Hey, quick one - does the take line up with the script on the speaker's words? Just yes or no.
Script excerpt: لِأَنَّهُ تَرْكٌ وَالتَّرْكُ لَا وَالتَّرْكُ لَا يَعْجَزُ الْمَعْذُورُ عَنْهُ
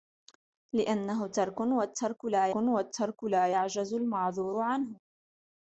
yes